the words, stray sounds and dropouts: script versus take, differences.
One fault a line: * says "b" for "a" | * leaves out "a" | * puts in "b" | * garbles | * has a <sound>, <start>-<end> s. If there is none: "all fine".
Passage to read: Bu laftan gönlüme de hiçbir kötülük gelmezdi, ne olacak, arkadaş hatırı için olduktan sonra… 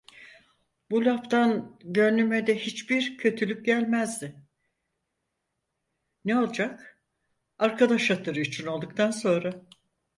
all fine